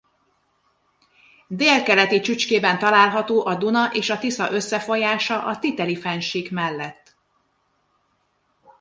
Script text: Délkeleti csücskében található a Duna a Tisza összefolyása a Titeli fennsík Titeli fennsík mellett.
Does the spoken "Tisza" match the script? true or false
true